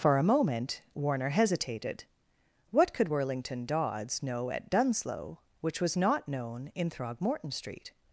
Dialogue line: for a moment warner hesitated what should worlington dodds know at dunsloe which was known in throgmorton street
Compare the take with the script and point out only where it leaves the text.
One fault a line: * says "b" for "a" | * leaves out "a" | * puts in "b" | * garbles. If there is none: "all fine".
* says "could" for "should"
* puts in "not"